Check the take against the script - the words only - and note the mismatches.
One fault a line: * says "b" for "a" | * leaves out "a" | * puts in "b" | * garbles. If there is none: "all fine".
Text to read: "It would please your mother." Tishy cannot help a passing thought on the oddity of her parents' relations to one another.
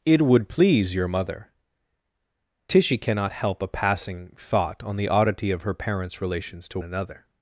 * leaves out "one"